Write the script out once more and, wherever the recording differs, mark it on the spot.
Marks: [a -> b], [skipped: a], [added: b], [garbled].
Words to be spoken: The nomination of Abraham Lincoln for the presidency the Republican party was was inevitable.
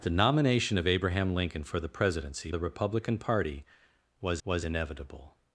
The nomination of Abraham Lincoln for the presidency the Republican party was was inevitable.